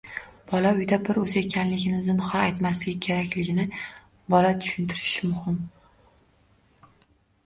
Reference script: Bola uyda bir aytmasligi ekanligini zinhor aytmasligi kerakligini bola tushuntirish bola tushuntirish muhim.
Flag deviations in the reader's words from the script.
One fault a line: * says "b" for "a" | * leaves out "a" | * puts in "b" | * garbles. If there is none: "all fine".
* says "o‘zi" for "aytmasligi"
* leaves out "bola tushuntirish"